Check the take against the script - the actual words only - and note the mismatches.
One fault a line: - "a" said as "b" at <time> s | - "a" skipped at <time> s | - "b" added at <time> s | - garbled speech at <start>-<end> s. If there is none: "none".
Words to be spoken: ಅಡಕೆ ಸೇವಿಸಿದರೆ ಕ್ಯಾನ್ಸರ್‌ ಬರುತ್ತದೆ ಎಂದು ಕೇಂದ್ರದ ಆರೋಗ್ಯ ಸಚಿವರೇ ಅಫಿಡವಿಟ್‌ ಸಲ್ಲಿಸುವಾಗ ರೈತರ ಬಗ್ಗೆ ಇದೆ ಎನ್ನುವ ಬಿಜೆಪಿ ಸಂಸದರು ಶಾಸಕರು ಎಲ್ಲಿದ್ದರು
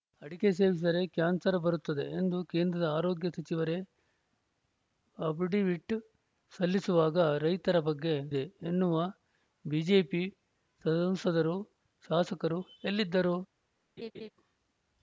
none